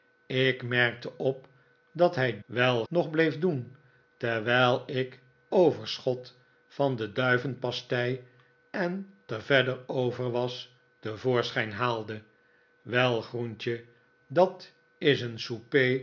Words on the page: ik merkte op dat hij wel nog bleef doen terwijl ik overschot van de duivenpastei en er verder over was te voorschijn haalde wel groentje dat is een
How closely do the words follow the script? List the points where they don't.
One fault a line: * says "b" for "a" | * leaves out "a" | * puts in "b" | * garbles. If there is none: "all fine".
all fine